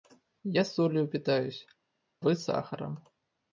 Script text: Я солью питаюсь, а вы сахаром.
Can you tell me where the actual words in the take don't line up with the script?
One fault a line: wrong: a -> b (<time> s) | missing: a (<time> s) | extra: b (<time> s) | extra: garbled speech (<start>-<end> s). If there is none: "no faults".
missing: а (1.7 s)